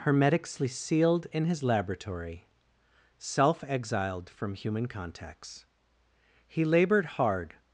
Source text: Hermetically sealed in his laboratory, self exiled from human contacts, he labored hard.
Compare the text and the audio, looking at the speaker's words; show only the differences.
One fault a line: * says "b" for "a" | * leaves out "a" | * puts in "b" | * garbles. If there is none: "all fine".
all fine